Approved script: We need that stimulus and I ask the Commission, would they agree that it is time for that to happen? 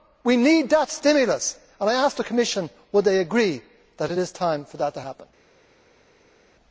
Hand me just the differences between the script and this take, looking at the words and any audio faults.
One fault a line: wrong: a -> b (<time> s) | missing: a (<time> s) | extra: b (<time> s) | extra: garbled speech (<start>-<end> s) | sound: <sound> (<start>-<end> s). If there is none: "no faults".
no faults